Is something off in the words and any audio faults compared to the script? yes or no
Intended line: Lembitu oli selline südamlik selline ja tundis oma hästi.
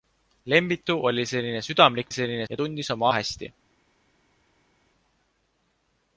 no